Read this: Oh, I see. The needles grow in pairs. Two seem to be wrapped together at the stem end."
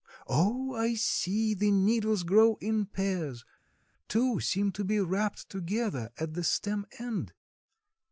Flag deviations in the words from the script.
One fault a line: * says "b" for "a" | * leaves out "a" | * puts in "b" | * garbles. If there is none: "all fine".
all fine